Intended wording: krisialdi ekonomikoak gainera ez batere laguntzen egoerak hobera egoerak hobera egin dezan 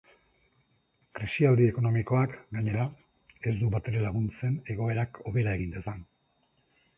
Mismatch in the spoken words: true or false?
true